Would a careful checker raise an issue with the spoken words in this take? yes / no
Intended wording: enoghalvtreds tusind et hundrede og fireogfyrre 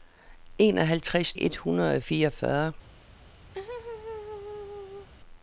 yes